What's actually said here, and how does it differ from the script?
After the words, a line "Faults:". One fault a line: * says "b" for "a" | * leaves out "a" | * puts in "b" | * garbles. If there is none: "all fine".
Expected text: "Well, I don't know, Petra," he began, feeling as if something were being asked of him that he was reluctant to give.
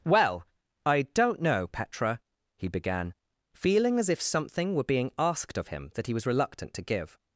"Well, I don't know, Petra," he began, feeling as if something were being asked of him that he was reluctant to give.
Faults:
all fine